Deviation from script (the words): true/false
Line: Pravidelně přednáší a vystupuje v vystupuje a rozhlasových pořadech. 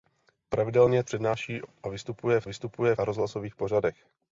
false